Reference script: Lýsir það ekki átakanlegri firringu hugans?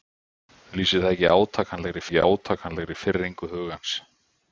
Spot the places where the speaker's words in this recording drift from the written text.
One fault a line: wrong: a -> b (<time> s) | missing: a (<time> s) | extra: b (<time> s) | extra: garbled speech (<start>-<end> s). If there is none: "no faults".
extra: ekki átakanlegri (2.1 s)